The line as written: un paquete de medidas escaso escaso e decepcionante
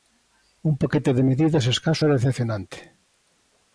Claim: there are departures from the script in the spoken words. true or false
true